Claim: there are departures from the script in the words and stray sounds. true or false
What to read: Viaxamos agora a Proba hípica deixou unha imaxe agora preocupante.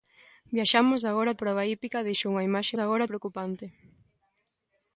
false